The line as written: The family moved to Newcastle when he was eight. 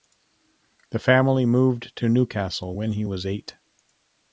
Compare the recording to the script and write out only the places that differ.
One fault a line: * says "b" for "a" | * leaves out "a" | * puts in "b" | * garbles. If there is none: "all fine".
all fine